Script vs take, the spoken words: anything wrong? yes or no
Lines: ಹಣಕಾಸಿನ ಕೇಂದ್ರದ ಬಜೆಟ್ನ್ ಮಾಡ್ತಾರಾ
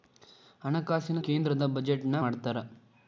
no